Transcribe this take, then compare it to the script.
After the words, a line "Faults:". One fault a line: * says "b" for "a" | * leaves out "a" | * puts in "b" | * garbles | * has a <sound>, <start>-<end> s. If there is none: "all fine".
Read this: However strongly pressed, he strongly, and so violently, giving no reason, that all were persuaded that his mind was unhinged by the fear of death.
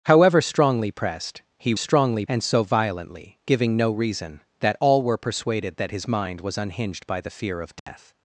However strongly pressed, he strongly, and so violently, giving no reason, that all were persuaded that his mind was unhinged by the fear of death.
Faults:
* has a dropout, 7.8-7.9 s